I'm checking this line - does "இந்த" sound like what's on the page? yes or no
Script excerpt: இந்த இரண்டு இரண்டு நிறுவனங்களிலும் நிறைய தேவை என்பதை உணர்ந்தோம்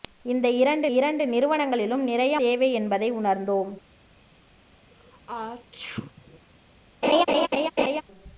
yes